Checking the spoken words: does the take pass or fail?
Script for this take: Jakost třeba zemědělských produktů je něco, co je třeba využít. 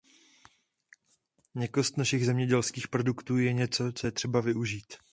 fail